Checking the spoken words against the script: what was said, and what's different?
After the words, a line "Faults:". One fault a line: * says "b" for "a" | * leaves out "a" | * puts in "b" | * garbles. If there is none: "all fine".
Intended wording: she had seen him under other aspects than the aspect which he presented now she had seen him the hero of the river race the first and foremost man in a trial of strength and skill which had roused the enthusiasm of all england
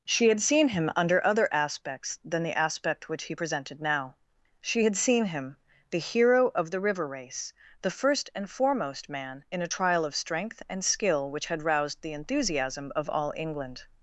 she had seen him under other aspects than the aspect which he presented now she had seen him the hero of the river race the first and foremost man in a trial of strength and skill which had roused the enthusiasm of all england
Faults:
all fine